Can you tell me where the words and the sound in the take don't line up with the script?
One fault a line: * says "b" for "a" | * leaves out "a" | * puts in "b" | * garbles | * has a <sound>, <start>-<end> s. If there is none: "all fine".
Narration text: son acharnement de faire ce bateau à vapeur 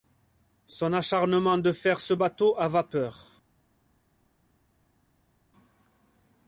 all fine